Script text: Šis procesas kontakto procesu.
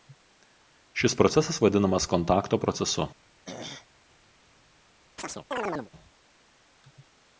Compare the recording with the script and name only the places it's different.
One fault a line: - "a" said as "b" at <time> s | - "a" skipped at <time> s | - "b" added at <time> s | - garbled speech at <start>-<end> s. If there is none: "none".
- "vadinamas" added at 1.6 s